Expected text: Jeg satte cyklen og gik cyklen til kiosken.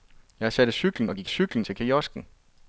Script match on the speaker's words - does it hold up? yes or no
yes